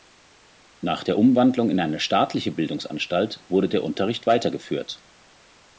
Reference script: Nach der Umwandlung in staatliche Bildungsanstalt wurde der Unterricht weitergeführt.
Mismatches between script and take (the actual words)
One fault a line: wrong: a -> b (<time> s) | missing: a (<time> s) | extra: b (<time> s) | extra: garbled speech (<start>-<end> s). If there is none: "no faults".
extra: eine (1.8 s)